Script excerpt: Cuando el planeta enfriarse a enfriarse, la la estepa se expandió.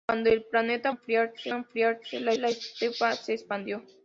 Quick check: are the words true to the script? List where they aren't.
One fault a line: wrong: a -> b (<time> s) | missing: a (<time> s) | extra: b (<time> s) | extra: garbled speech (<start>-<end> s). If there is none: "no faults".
no faults